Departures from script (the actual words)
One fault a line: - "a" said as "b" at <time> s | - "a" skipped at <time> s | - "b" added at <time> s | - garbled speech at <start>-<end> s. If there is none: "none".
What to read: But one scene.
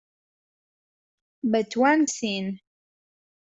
none